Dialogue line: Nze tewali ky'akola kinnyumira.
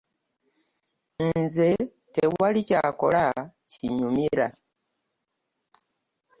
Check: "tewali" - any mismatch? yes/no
no